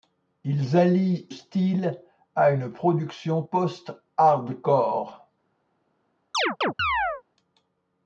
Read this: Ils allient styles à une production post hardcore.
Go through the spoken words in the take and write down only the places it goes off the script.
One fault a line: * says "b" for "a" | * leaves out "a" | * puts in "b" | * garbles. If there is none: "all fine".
all fine